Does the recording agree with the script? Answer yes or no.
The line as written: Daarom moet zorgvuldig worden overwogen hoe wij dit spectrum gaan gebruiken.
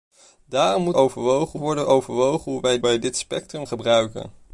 no